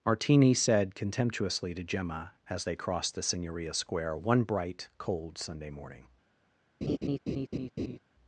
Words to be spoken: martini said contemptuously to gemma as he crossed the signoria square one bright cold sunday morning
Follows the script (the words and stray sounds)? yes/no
no